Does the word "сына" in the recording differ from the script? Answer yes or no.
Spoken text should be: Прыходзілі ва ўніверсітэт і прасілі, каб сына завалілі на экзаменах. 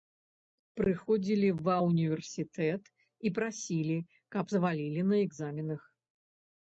yes